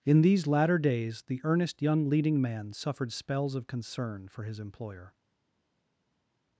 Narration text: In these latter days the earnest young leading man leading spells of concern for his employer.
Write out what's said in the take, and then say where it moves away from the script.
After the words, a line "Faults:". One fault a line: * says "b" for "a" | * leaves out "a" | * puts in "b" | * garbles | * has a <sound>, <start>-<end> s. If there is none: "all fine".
In these latter days the earnest young leading man suffered spells of concern for his employer.
Faults:
* says "suffered" for "leading"